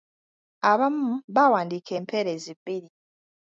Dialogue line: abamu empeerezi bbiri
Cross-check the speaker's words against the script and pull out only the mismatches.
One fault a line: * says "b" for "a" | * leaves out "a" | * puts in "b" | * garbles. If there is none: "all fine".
* puts in "baawandiika"